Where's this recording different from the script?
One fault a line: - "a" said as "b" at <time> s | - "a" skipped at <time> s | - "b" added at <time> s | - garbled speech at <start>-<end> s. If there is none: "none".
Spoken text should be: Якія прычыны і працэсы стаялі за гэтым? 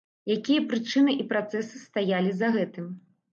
none